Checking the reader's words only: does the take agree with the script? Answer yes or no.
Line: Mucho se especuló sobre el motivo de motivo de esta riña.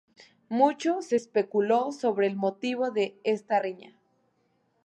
no